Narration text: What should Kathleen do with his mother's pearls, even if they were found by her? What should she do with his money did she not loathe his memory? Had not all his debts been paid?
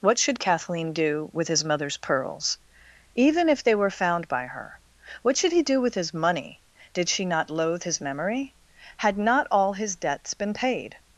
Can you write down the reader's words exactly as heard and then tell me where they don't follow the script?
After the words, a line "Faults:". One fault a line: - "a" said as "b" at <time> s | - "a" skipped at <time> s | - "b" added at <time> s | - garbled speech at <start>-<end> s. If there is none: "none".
What should Kathleen do with his mother's pearls, even if they were found by her? What should he do with his money did she not loathe his memory? Had not all his debts been paid?
Faults:
- "she" said as "he" at 5.5 s